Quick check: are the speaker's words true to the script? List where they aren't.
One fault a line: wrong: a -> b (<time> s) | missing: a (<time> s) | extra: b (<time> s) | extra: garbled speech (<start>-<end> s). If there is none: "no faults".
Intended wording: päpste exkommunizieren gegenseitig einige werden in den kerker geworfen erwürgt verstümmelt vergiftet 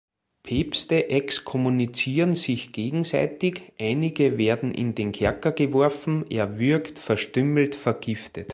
extra: sich (2.3 s)